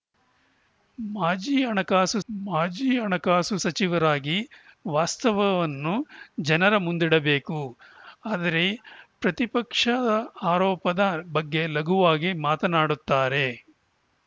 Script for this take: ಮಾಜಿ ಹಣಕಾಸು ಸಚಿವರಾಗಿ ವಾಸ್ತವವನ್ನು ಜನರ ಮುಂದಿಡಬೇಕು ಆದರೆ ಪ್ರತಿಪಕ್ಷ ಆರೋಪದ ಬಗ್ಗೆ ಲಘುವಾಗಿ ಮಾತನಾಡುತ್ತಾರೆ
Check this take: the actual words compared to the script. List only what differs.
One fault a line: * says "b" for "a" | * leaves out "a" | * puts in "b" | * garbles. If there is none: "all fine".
* puts in "ಮಾಜಿ ಹಣಕಾಸು"